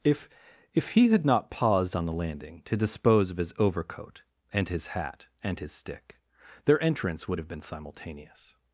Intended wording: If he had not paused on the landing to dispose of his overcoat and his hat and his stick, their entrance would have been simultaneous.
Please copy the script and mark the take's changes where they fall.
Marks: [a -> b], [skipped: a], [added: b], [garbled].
If [added: if] he had not paused on the landing to dispose of his overcoat and his hat and his stick, their entrance would have been simultaneous.